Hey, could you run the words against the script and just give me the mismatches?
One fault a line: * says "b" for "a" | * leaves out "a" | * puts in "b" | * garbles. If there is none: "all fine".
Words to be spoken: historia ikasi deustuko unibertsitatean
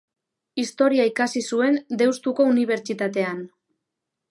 * puts in "zuen"